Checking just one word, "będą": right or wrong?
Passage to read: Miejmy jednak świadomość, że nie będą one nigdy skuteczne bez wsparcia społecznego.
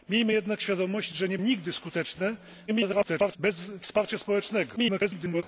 wrong